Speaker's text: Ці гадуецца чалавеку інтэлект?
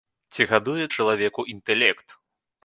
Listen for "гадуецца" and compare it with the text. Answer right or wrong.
right